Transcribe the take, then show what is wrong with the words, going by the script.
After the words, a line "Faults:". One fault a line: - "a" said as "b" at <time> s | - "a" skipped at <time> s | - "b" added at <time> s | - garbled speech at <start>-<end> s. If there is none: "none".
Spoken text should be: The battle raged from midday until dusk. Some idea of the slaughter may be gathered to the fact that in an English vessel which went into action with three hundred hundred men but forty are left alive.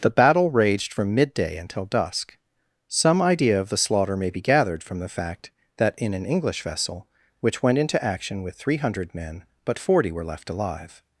The battle raged from midday until dusk. Some idea of the slaughter may be gathered from the fact that in an English vessel which went into action with three hundred men but forty were left alive.
Faults:
- "to" said as "from" at 4.8 s
- "hundred" skipped at 9.1 s
- "are" said as "were" at 10.1 s